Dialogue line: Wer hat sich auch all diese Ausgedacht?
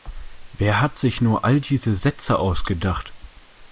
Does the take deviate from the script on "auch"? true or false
true